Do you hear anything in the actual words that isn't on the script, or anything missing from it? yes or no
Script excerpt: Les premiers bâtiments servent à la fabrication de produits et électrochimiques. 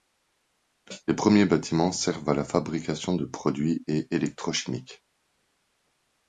no